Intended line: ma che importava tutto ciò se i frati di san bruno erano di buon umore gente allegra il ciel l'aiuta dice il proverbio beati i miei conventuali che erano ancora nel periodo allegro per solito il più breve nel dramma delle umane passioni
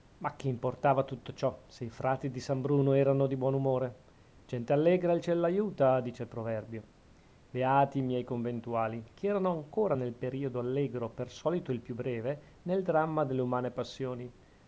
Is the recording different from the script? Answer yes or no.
no